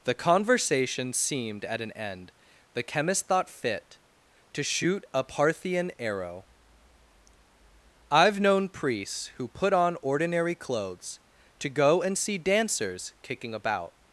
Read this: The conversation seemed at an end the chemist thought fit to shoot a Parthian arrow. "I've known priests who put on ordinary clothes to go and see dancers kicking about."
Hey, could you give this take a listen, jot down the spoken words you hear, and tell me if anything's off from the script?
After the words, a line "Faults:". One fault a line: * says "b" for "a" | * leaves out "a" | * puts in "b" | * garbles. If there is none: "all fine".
The conversation seemed at an end the chemist thought fit to shoot a Parthian arrow. "I've known priests who put on ordinary clothes to go and see dancers kicking about."
Faults:
all fine